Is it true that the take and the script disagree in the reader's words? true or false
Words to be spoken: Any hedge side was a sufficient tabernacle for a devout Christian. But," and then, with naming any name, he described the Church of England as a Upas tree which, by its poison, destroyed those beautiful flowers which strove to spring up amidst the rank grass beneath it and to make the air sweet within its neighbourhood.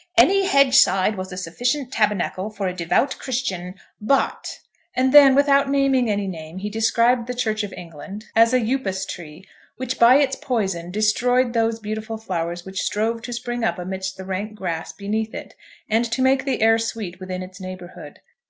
true